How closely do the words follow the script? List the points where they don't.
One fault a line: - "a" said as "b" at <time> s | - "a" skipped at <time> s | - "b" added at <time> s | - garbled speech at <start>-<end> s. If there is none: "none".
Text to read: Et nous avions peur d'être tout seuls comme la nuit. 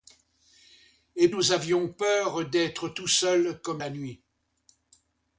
none